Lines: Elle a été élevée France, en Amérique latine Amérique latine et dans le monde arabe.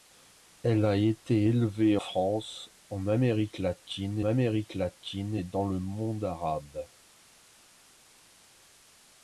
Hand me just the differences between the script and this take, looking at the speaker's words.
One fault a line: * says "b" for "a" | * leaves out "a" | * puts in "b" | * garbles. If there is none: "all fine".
all fine